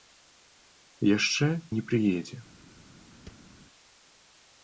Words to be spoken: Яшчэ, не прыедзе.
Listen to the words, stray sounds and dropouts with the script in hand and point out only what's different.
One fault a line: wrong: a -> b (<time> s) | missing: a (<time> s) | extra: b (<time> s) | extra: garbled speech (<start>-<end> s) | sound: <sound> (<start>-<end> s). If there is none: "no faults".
sound: thud (3.2-3.5 s)